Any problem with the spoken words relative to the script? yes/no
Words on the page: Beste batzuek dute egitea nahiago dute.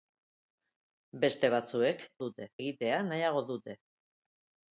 no